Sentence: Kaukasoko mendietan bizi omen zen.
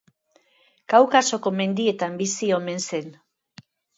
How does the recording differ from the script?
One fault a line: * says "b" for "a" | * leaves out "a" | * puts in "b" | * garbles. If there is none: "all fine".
all fine